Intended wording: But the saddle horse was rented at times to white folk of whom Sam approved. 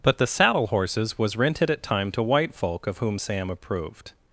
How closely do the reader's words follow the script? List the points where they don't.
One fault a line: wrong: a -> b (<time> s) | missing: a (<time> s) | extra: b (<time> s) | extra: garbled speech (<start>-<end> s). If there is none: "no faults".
wrong: horse -> horses (0.7 s)
wrong: times -> time (1.8 s)